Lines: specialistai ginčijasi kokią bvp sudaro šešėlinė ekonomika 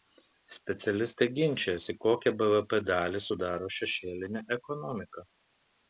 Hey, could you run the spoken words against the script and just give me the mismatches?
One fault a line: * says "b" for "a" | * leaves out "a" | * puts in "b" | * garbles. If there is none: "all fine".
* puts in "dalį"